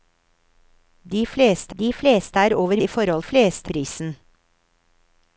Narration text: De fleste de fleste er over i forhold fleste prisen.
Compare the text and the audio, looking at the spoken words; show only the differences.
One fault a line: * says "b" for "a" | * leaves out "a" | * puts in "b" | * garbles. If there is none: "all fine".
all fine